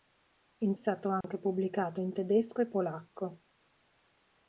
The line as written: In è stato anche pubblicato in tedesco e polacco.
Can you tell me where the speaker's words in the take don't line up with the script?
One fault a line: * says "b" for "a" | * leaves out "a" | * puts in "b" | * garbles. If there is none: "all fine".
all fine